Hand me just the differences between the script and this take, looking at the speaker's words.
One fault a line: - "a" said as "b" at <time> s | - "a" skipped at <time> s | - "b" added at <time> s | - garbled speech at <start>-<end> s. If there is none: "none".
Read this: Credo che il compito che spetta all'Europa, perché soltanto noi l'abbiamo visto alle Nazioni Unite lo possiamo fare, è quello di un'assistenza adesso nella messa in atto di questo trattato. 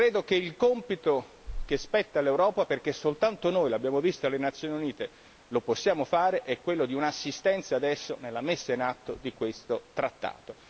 none